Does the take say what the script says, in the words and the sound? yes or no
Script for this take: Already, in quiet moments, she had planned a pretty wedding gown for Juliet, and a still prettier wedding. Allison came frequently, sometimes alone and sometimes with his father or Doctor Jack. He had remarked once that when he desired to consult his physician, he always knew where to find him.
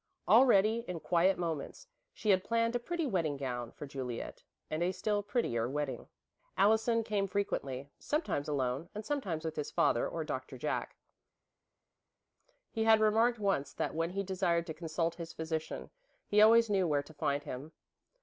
yes